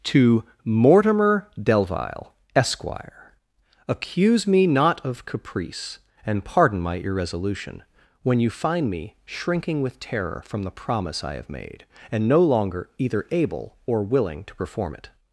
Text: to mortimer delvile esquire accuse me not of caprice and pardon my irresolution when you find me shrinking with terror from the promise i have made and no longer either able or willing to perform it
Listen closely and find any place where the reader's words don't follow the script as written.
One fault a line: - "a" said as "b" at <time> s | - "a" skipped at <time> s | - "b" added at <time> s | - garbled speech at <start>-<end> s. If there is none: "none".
none